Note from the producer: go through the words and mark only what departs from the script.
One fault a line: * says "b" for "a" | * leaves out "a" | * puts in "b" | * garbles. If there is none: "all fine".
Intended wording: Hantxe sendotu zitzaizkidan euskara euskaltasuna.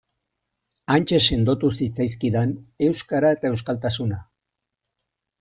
* puts in "eta"